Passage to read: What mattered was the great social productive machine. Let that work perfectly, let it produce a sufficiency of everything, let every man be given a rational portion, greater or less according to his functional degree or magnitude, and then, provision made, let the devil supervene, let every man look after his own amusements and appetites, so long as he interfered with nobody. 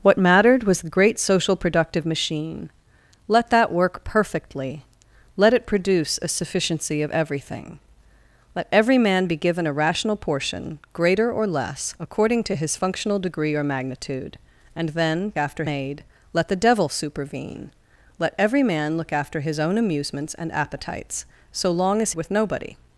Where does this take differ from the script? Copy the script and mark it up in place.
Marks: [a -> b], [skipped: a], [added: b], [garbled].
What mattered was the great social productive machine. Let that work perfectly, let it produce a sufficiency of everything, let every man be given a rational portion, greater or less according to his functional degree or magnitude, and then, [provision -> after] made, let the devil supervene, let every man look after his own amusements and appetites, so long as [skipped: he interfered] with nobody.